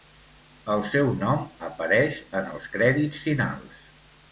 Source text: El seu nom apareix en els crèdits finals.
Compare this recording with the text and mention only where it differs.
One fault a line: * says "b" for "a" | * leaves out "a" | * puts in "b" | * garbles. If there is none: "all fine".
all fine